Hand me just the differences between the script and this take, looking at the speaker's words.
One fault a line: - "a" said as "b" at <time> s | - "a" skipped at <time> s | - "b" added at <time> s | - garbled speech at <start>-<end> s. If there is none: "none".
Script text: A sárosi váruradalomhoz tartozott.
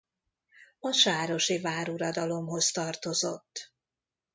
none